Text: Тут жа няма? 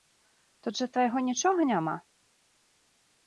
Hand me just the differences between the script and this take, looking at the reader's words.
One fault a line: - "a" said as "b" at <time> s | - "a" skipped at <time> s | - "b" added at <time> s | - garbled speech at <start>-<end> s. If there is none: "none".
- "твайго нічога" added at 0.9 s